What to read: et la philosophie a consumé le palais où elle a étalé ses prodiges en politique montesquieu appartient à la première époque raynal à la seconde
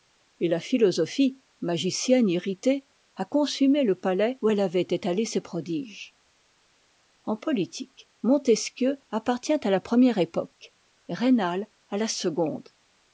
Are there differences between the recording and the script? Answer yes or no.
yes